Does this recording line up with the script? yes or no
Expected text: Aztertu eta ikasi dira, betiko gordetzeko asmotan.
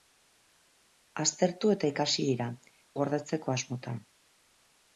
no